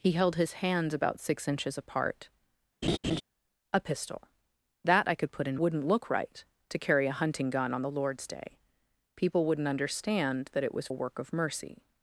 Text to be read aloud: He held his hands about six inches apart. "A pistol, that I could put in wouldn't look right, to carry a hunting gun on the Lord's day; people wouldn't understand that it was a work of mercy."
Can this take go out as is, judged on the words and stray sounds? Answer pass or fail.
fail